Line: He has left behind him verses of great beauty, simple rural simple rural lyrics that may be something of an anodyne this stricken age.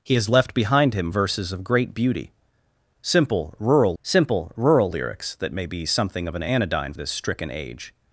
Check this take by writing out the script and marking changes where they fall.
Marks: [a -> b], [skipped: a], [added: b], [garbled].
He has left behind him verses of great beauty, simple rural simple rural lyrics that may be something of an anodyne this stricken age.